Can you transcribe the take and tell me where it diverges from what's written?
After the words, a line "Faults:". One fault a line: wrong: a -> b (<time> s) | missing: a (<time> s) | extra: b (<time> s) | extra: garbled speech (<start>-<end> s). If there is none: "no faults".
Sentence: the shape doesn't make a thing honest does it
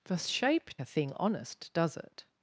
the shape a thing honest does it
Faults:
missing: doesn't make (0.8 s)